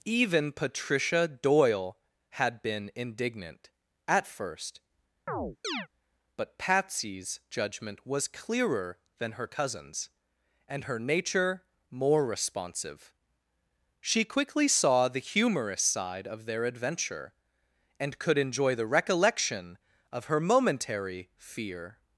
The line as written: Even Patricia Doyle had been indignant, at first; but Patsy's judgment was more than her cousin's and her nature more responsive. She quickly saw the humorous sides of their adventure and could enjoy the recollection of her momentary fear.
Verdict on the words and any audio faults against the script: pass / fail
fail